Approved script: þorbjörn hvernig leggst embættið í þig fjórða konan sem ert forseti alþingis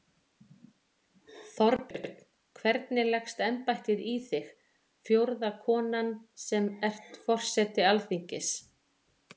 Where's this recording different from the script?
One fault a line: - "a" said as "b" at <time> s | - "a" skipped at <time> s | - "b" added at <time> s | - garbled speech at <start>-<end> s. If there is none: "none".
none